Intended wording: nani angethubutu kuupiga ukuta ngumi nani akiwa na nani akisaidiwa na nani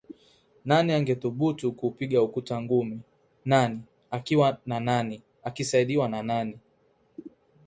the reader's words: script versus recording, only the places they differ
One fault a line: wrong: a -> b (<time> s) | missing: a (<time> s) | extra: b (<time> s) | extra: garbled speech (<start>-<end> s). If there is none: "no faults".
no faults